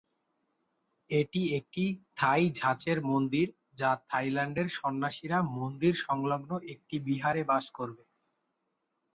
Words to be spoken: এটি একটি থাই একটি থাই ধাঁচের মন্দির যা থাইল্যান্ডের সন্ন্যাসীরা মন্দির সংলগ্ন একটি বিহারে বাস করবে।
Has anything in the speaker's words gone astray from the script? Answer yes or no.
yes